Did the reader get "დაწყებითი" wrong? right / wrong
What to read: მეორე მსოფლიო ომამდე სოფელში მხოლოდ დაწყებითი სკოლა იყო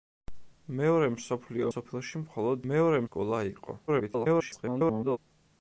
wrong